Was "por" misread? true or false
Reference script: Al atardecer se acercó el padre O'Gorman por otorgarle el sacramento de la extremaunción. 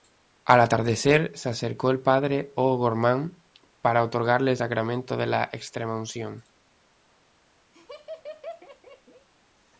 true